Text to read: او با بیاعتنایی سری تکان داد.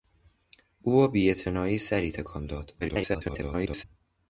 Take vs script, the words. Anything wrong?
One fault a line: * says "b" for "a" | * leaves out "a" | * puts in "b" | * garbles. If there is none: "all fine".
* garbles